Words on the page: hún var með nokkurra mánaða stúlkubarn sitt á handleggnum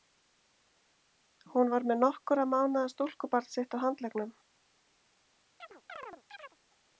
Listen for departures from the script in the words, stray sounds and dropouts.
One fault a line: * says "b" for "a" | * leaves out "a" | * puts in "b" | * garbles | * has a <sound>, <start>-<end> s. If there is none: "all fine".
* has a chirp, 5.6-6.6 s